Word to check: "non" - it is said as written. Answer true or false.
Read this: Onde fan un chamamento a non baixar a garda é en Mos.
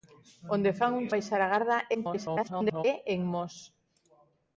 false